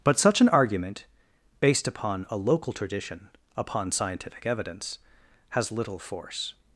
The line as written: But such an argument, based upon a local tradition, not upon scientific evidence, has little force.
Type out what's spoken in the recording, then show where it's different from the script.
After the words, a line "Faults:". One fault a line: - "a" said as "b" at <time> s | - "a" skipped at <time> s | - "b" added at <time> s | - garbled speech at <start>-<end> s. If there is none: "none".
But such an argument, based upon a local tradition, upon scientific evidence, has little force.
Faults:
- "not" skipped at 3.3 s